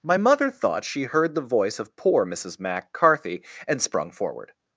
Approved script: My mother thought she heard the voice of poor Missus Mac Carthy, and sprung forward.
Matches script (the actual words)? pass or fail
pass